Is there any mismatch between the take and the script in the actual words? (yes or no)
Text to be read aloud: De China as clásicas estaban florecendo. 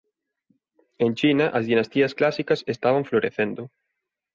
yes